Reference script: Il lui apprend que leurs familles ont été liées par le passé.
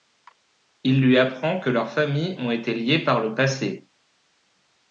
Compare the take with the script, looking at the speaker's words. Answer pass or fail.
pass